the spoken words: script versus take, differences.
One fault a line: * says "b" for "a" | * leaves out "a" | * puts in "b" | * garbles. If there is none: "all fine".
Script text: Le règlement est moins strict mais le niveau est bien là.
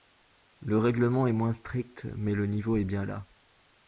all fine